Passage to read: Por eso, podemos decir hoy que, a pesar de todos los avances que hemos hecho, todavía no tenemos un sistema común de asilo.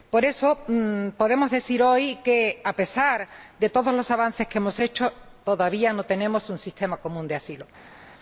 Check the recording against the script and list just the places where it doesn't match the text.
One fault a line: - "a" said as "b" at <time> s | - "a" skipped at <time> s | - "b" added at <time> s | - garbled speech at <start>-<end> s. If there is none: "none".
none